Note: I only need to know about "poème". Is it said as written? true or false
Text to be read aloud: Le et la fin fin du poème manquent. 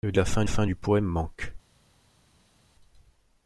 true